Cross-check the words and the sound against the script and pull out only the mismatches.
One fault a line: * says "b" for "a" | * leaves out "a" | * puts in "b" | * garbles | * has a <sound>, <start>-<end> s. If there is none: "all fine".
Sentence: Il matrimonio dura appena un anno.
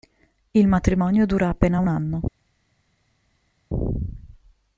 all fine